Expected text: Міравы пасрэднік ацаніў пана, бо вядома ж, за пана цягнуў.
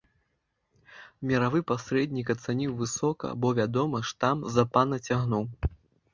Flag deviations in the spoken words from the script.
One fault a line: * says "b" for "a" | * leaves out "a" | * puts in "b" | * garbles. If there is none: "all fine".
* says "высока" for "пана"
* puts in "там"